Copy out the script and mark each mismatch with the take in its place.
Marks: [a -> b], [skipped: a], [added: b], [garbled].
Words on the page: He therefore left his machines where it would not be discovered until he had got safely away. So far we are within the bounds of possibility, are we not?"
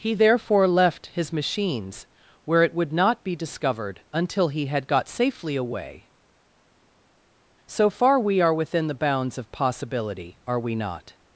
He therefore left his machines where it would not be discovered until he had got safely away. So far we are within the bounds of possibility, are we not?"